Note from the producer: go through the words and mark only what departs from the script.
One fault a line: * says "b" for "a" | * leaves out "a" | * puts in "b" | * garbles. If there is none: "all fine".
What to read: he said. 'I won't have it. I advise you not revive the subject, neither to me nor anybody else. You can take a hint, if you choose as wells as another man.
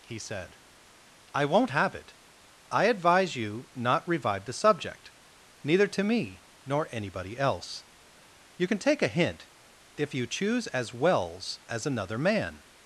all fine